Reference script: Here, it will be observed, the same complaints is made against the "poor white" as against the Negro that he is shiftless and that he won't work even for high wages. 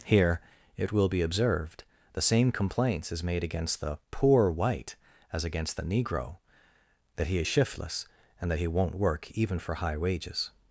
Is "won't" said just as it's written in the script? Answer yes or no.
yes